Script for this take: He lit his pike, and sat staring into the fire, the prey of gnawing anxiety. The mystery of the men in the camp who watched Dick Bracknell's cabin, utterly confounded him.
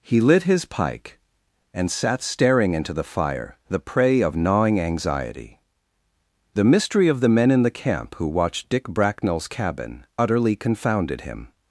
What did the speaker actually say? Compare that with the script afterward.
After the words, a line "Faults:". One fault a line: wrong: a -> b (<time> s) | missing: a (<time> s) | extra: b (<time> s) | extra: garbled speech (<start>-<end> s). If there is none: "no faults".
He lit his pike, and sat staring into the fire, the prey of gnawing anxiety. The mystery of the men in the camp who watched Dick Bracknell's cabin, utterly confounded him.
Faults:
no faults